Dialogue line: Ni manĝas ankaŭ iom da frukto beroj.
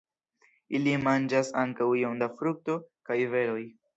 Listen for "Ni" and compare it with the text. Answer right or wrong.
wrong